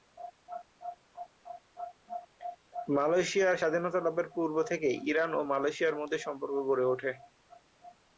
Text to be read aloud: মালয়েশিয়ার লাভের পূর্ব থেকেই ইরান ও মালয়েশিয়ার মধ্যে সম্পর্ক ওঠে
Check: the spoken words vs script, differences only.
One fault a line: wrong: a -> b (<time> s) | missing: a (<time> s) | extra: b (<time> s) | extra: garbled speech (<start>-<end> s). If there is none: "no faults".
extra: স্বাধীনতা (3.6 s)
extra: গড়ে (6.7 s)